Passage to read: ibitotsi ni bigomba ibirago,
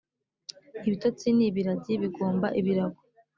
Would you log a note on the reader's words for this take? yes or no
yes